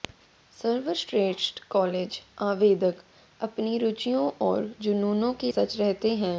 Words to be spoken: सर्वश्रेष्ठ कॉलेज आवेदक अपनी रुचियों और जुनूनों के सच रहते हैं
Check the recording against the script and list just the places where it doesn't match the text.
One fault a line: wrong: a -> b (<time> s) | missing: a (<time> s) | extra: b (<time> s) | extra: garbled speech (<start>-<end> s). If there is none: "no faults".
no faults